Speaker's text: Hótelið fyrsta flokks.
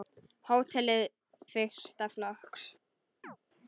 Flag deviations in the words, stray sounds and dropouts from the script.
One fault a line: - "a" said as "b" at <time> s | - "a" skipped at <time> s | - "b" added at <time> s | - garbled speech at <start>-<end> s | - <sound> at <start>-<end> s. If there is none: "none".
- chirp at 3.2-3.4 s